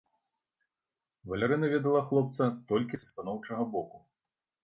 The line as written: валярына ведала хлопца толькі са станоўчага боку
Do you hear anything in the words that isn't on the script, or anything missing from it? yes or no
no